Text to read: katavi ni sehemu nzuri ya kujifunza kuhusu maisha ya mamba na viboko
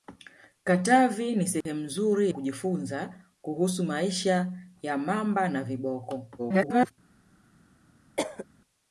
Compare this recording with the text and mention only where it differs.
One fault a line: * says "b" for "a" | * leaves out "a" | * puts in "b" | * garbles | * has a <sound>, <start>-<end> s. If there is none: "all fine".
* has a dropout, 1.6-1.7 s
* leaves out "ya"
* garbles
* has a cough, 8.2-8.5 s